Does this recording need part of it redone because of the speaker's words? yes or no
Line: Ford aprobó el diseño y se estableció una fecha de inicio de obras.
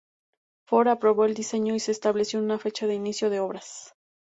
no